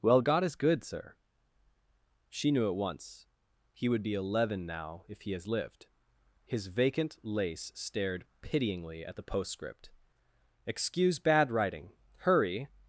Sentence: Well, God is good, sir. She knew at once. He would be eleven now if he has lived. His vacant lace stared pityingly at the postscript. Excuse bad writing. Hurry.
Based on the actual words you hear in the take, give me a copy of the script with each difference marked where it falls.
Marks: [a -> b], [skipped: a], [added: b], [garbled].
Well, God is good, sir. She knew at once. He would be eleven now if he has lived. His vacant lace stared pityingly at the postscript. Excuse bad writing. Hurry.